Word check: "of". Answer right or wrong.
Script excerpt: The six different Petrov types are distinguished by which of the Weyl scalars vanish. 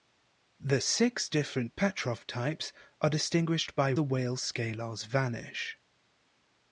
wrong